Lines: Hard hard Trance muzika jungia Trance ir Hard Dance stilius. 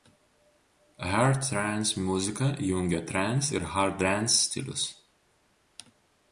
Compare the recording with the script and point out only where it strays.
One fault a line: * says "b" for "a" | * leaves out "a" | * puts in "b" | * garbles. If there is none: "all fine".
* leaves out "hard"